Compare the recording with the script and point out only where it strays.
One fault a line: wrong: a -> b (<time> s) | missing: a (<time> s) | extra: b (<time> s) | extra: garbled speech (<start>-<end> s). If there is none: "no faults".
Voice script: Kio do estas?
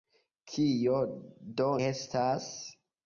no faults